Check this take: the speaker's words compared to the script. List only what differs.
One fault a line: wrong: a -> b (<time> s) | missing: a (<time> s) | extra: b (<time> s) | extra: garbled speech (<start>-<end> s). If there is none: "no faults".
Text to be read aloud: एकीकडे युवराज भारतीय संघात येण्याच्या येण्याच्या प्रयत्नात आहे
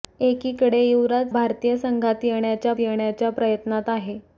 no faults